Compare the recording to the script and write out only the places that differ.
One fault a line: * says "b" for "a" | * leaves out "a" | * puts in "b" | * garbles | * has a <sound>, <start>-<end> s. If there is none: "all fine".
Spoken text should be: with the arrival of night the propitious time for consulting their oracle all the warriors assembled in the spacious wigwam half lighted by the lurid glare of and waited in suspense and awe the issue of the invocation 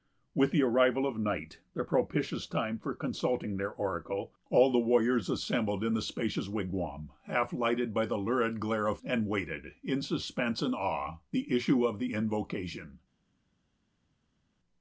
all fine